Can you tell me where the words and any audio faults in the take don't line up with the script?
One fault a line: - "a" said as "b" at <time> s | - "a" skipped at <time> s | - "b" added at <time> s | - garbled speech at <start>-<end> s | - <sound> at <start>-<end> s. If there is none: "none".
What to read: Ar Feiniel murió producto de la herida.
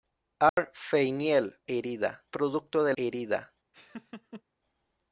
- dropout at 0.5-0.6 s
- "murió" said as "herida" at 1.7 s
- "la" skipped at 2.9 s
- laugh at 3.7-4.4 s